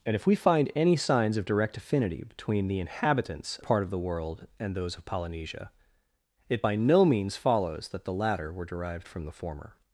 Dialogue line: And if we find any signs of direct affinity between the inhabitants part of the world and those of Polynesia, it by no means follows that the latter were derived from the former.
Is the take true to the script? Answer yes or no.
yes